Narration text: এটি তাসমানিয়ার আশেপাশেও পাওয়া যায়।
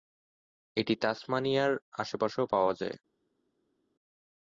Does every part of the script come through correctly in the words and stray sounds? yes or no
yes